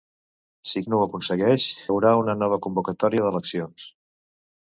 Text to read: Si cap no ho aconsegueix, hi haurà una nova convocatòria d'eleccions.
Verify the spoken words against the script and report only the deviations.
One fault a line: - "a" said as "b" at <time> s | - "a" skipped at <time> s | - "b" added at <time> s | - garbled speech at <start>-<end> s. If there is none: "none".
- "cap" skipped at 0.8 s
- "hi" skipped at 1.7 s